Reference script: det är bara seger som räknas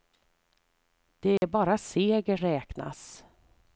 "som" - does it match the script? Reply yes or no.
no